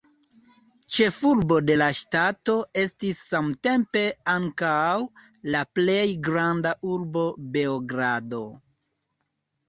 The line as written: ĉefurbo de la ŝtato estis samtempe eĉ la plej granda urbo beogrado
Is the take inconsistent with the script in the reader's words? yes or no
yes